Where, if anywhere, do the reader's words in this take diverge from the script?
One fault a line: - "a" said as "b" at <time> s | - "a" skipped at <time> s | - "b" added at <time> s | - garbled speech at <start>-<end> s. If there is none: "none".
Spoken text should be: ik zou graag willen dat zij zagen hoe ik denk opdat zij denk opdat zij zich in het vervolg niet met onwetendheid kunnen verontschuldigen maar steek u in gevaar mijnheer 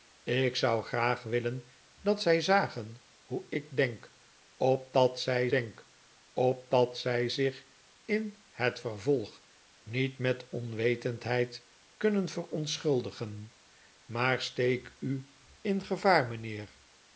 none